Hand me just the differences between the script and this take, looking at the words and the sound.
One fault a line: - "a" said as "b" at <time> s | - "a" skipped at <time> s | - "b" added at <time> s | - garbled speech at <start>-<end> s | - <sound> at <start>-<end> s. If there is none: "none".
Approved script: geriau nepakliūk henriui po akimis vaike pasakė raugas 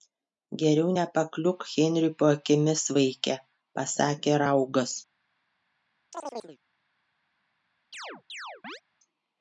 - chirp at 6.1-6.6 s
- chirp at 7.9-8.8 s